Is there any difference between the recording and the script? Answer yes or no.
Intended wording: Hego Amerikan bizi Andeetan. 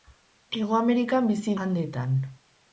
no